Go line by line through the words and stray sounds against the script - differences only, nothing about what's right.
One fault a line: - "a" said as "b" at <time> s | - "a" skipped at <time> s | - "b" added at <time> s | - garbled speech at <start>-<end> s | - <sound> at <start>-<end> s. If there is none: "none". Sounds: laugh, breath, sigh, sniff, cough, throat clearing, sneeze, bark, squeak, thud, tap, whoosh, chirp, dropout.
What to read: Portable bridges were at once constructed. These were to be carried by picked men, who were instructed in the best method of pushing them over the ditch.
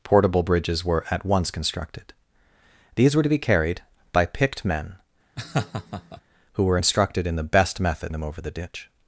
- laugh at 5.4-6.2 s
- "of pushing" skipped at 8.1 s